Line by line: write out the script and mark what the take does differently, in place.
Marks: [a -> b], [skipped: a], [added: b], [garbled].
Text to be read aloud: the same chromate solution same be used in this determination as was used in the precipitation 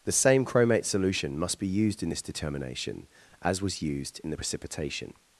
the same chromate solution [same -> must] be used in this determination as was used in the precipitation